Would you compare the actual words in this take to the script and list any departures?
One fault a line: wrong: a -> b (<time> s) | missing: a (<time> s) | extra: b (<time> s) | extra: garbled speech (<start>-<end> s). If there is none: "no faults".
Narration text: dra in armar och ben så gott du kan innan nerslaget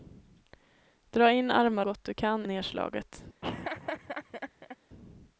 missing: och ben så (1.9 s)
missing: innan (2.5 s)